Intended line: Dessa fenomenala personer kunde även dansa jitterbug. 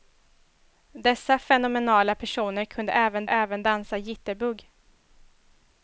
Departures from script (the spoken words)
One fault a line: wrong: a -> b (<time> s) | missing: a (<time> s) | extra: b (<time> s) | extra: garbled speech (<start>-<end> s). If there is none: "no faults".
extra: även (3.3 s)